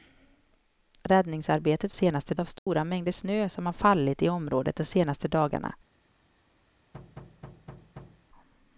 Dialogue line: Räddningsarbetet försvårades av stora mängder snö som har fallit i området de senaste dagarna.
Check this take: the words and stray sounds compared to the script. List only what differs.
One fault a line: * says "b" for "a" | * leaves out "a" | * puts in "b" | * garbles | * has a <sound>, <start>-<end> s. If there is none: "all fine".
* says "senaste" for "försvårades"
* has a dropout, 2.6-2.7 s
* has a thud, 6.9-8.3 s